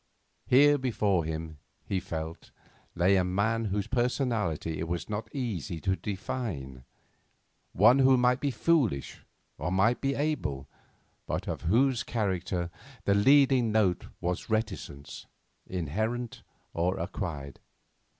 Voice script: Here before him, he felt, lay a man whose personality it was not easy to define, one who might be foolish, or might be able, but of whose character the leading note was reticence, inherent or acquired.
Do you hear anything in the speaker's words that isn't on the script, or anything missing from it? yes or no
no